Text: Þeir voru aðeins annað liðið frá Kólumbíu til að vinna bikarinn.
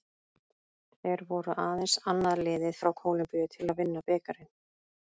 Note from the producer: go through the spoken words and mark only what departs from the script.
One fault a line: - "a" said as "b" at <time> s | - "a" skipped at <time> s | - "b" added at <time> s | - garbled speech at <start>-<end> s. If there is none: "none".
none